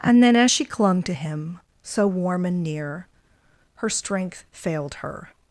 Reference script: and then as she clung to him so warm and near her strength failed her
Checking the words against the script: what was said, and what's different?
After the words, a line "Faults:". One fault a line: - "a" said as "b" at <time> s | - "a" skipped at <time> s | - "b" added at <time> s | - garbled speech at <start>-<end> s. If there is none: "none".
and then as she clung to him so warm and near her strength failed her
Faults:
none